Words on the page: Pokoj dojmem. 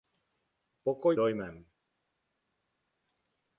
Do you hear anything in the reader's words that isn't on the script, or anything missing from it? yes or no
no